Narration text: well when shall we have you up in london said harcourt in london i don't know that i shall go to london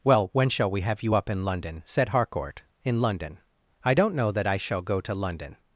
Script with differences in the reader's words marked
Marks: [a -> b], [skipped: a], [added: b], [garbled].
well when shall we have you up in london said harcourt in london i don't know that i shall go to london